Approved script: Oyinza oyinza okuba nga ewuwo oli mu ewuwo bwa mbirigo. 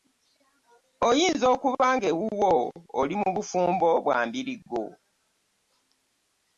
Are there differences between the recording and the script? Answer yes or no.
yes